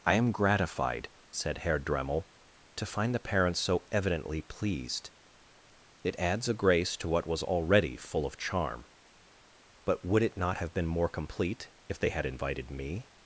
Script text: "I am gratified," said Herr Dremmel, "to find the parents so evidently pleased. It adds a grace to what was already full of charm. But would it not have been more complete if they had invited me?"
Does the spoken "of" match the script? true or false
true